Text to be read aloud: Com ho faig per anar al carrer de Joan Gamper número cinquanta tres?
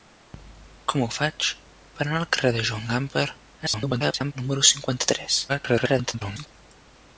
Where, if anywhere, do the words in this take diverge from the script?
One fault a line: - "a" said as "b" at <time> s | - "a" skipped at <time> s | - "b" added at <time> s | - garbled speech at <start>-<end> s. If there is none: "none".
- garbled speech at 3.6-4.3 s
- garbled speech at 5.5-6.5 s